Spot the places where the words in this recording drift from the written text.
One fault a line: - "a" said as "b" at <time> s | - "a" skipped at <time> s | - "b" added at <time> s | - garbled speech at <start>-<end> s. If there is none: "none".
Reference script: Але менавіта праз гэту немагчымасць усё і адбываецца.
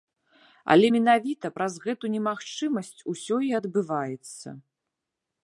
none